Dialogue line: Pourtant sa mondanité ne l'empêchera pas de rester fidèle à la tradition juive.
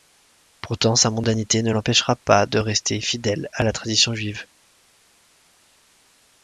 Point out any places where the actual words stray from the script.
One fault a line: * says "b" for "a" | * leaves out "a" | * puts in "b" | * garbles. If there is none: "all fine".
all fine